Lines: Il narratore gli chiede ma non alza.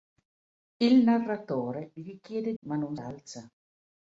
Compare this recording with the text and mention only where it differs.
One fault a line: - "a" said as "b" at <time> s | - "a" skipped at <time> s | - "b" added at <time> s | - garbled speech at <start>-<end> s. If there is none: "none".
none